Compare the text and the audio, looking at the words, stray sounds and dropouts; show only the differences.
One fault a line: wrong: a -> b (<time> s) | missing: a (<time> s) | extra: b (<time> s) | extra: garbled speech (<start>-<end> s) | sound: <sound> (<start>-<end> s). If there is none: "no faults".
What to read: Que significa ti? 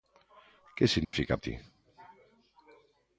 sound: dropout (1.0-1.1 s)